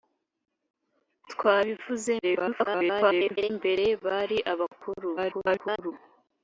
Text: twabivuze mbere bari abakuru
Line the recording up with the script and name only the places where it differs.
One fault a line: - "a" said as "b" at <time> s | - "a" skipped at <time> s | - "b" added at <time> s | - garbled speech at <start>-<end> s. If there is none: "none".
- garbled speech at 2.2-3.5 s
- garbled speech at 5.2-5.9 s